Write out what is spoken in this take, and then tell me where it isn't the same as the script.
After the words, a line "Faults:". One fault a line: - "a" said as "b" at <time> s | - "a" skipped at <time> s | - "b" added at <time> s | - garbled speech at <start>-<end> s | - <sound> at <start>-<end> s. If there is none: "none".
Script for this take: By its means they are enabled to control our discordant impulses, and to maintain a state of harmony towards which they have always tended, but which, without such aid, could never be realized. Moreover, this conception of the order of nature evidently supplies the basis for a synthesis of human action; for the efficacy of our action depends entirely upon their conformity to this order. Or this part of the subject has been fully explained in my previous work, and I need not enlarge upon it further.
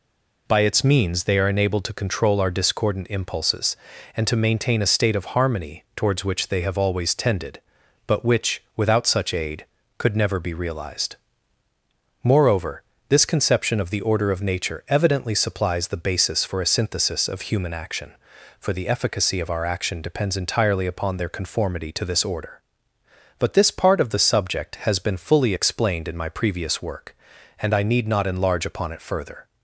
By its means they are enabled to control our discordant impulses, and to maintain a state of harmony towards which they have always tended, but which, without such aid, could never be realized. Moreover, this conception of the order of nature evidently supplies the basis for a synthesis of human action; for the efficacy of our action depends entirely upon their conformity to this order. But this part of the subject has been fully explained in my previous work, and I need not enlarge upon it further.
Faults:
- "Or" said as "But" at 23.4 s